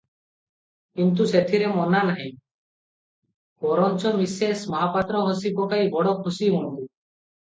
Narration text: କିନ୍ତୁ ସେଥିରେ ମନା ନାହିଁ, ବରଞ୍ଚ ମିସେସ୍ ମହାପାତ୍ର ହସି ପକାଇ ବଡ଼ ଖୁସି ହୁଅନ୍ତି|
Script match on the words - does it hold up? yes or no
yes